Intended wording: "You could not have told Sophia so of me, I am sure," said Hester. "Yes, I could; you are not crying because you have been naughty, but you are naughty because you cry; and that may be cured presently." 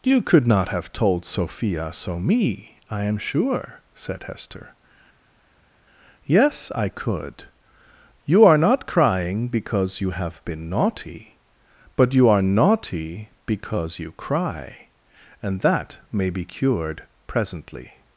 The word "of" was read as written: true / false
false